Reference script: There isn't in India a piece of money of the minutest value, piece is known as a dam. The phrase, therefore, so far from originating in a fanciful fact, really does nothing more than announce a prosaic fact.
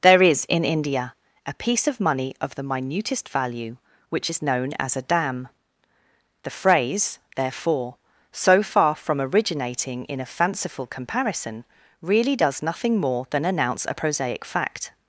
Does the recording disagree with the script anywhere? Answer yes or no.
yes